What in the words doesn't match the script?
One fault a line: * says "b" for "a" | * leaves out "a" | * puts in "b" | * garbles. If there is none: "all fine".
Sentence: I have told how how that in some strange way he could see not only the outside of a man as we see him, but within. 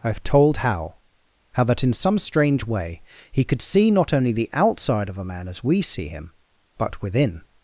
all fine